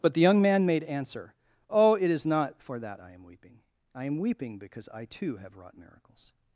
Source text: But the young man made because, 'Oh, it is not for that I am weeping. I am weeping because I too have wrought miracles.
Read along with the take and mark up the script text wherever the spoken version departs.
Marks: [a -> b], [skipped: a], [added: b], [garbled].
But the young man made [because, -> answer] 'Oh, it is not for that I am weeping. I am weeping because I too have wrought miracles.